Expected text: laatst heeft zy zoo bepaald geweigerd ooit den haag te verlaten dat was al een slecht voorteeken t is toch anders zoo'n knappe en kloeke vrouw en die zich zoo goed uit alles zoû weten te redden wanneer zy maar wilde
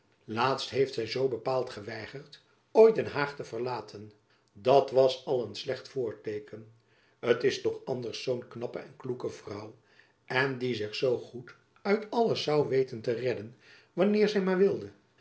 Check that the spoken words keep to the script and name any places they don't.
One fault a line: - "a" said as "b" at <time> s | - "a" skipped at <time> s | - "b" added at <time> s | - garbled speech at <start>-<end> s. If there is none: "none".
none